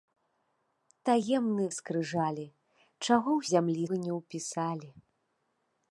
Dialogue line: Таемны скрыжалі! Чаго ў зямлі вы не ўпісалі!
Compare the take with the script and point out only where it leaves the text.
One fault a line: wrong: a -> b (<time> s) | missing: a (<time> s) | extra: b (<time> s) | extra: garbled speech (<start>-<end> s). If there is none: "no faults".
no faults